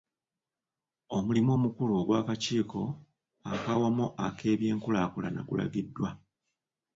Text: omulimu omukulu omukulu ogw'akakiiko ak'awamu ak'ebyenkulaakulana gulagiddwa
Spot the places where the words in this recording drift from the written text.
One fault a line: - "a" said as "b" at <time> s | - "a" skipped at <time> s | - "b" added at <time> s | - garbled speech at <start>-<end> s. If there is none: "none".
- "omukulu" skipped at 1.9 s